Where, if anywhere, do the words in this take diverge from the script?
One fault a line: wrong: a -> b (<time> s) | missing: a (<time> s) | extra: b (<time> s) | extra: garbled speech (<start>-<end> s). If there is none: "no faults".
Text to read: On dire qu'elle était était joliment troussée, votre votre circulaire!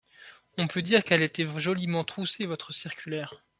extra: peut (0.7 s)
missing: était (1.5 s)
missing: votre (2.7 s)